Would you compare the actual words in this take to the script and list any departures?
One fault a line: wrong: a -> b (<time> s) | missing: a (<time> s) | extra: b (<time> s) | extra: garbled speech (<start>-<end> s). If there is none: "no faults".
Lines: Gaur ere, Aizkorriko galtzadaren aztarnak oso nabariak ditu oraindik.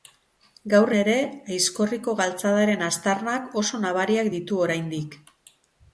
no faults